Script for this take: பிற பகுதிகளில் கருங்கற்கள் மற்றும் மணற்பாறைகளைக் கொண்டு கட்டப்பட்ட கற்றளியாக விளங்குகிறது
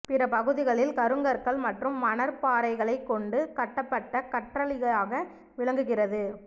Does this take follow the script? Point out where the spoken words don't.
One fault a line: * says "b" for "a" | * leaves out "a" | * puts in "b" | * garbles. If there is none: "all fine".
all fine